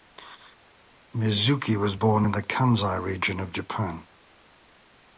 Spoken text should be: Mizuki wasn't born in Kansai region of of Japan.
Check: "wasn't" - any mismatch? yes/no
yes